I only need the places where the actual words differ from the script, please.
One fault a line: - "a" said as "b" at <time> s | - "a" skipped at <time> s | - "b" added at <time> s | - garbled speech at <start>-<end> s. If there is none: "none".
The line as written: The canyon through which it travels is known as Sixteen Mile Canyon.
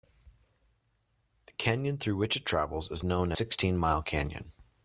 - "as" skipped at 3.3 s